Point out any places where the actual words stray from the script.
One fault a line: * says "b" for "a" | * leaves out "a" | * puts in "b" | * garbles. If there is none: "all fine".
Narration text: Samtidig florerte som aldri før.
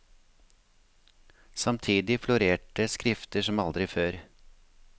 * puts in "skrifter"